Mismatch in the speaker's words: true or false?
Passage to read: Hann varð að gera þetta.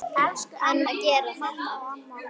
true